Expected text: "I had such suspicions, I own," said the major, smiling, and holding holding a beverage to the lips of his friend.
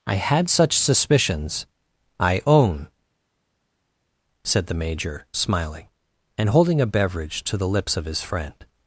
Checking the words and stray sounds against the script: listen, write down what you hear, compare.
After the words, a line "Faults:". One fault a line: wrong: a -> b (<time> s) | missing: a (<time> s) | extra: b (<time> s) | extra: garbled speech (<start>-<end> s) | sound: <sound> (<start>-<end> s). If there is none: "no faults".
"I had such suspicions, I own," said the major, smiling, and holding a beverage to the lips of his friend.
Faults:
missing: holding (6.8 s)